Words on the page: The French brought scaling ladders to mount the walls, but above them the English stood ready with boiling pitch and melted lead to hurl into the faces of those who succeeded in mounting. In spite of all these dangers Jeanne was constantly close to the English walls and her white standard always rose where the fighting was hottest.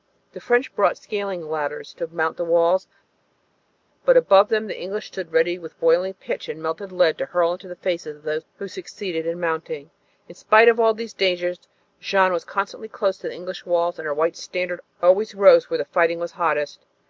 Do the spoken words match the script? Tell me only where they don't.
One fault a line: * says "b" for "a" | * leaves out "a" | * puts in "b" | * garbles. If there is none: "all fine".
all fine